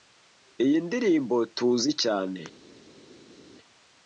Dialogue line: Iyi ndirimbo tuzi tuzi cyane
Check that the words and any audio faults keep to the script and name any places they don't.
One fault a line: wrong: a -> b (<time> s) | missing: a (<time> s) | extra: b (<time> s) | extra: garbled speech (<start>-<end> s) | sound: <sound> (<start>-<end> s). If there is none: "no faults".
missing: tuzi (1.9 s)